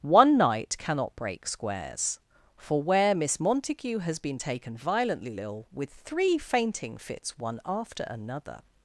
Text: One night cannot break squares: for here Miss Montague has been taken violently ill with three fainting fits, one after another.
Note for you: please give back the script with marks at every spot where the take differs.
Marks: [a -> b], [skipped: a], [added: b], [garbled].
One night cannot break squares: for [here -> where] Miss Montague has been taken violently ill with three fainting fits, one after another.